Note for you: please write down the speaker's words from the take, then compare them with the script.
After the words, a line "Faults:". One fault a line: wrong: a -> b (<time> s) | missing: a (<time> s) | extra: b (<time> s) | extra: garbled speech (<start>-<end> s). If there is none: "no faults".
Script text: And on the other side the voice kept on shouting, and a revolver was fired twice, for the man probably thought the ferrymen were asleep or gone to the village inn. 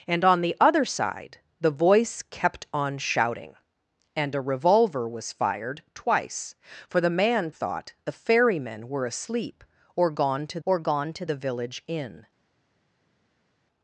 And on the other side the voice kept on shouting, and a revolver was fired twice, for the man thought the ferrymen were asleep or gone to or gone to the village inn.
Faults:
missing: probably (7.5 s)
extra: or gone to (10.6 s)